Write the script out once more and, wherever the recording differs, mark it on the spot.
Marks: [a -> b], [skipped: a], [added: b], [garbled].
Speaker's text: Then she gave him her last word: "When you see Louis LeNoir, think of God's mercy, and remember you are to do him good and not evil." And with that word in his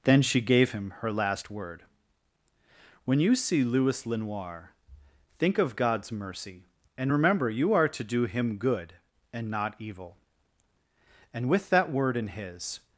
Then she gave him her last word: "When you see Louis LeNoir, think of God's mercy, and remember you are to do him good and not evil." And with that word in his